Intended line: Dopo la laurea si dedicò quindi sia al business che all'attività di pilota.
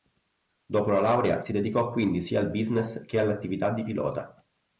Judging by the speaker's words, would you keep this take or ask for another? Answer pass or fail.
pass